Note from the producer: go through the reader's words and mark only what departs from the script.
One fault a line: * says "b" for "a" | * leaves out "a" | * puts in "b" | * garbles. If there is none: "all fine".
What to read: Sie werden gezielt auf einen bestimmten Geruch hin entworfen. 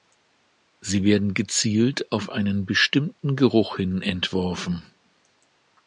all fine